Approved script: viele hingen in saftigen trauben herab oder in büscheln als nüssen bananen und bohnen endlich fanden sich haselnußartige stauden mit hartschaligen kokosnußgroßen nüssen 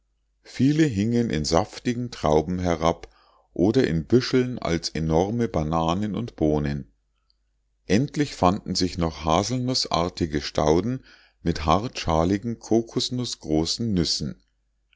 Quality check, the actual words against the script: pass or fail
fail